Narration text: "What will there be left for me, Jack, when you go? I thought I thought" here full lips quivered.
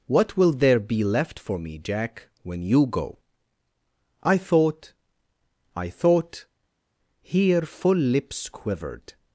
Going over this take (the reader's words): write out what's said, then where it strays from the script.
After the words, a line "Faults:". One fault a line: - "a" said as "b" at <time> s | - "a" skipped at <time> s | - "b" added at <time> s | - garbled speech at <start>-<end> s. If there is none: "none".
"What will there be left for me, Jack, when you go? I thought I thought" here full lips quivered.
Faults:
none